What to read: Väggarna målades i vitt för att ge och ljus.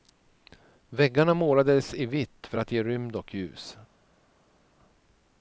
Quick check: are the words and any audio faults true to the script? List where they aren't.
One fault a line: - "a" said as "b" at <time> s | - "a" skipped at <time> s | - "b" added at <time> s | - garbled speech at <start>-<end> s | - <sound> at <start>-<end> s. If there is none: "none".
- "rymd" added at 2.8 s